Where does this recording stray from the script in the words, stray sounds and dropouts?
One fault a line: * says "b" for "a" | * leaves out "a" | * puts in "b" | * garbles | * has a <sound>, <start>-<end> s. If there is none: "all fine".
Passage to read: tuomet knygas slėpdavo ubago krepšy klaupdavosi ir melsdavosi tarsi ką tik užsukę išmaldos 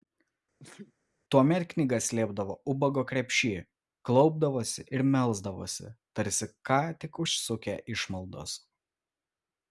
* has a sneeze, 0.6-0.9 s